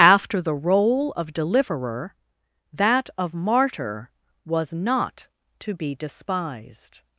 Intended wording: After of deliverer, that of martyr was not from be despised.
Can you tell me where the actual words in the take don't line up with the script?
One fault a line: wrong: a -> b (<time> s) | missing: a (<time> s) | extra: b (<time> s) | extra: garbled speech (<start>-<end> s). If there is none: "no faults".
extra: the role (0.4 s)
wrong: from -> to (5.6 s)